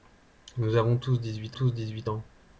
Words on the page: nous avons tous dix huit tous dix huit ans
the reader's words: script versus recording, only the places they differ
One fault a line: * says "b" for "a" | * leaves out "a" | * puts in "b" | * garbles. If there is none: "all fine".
all fine